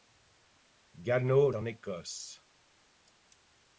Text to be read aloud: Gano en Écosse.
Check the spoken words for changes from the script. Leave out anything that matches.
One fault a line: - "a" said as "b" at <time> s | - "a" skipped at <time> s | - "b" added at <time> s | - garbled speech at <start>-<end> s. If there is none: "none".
none